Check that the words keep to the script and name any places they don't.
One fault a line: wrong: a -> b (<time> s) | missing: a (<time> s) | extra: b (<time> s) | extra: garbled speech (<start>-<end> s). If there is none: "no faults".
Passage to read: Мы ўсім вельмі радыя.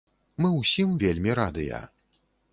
no faults